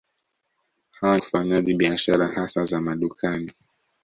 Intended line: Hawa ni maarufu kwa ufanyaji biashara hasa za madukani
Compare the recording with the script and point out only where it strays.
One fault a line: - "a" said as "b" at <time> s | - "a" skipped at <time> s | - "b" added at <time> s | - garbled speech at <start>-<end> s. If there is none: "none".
- "ni maarufu kwa" skipped at 1.2 s